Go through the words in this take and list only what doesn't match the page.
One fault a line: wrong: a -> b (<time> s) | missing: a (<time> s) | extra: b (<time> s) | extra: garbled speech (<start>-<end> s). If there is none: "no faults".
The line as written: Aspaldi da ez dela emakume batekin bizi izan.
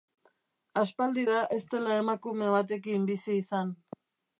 no faults